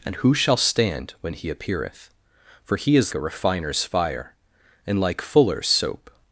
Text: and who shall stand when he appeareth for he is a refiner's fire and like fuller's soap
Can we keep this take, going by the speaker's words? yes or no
yes